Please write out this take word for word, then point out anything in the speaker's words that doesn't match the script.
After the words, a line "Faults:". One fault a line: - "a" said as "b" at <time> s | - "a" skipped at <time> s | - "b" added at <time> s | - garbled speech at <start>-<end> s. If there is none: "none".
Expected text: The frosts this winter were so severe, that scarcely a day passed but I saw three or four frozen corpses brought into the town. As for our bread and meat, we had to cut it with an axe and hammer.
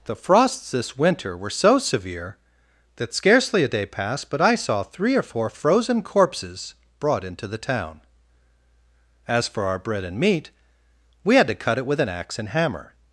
The frosts this winter were so severe, that scarcely a day passed but I saw three or four frozen corpses brought into the town. As for our bread and meat, we had to cut it with an axe and hammer.
Faults:
none